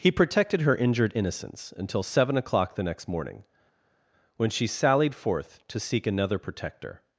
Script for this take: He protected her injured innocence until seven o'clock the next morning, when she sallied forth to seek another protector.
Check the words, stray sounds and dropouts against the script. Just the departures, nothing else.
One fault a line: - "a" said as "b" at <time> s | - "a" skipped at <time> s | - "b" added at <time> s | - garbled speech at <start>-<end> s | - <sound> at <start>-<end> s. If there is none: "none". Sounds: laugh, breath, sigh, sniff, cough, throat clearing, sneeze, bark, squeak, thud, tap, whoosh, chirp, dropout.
none